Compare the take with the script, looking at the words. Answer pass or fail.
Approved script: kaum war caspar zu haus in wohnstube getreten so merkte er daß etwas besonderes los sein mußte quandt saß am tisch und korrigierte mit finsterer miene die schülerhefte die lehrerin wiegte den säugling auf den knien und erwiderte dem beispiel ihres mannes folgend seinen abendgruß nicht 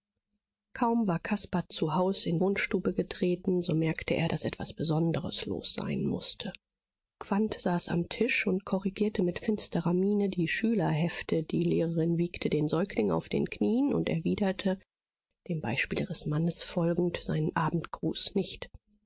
pass